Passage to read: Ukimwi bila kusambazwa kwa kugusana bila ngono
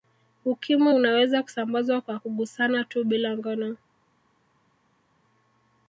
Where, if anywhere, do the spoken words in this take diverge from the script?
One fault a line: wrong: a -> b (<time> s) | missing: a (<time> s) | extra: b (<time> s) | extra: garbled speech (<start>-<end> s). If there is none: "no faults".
wrong: bila -> unaweza (0.9 s)
extra: tu (2.8 s)